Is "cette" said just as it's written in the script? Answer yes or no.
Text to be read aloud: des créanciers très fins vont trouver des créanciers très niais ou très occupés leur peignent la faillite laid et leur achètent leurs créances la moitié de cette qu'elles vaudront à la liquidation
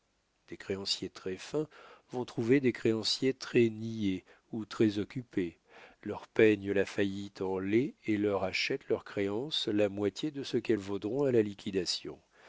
no